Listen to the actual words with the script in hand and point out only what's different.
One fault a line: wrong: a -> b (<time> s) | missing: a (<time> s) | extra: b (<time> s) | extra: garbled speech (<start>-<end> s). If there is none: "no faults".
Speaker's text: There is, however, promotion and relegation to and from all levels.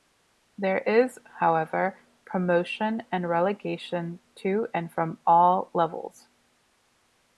no faults